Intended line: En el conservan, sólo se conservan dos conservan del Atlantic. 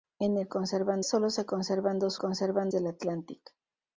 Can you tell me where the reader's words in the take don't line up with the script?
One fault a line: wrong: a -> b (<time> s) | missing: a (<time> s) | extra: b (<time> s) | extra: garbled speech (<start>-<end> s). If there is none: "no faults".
no faults